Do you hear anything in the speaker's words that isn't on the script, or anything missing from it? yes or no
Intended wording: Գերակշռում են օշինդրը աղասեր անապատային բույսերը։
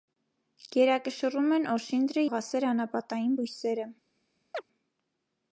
no